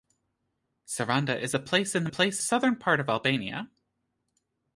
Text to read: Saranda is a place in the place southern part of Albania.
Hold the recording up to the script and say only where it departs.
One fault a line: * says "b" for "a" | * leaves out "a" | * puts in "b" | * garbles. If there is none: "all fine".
all fine